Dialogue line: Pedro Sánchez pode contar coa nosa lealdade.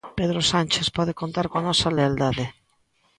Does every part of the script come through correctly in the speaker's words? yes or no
yes